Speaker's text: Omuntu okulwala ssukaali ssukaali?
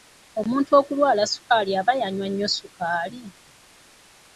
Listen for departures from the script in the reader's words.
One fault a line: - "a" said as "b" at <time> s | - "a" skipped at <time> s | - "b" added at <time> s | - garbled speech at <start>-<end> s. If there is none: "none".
- "aba yanywa nnyo" added at 1.8 s